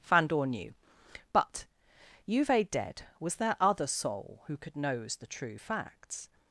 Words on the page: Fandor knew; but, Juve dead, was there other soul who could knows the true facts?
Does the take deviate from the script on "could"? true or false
false